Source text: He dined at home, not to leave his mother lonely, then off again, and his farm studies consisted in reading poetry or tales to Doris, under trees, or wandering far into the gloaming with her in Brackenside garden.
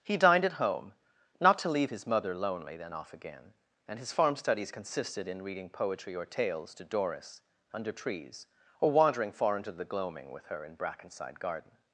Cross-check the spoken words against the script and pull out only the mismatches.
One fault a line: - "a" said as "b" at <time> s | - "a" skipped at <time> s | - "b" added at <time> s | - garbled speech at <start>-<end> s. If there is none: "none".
none